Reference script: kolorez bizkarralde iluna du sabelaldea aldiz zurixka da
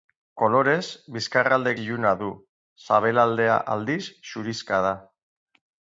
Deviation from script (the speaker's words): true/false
false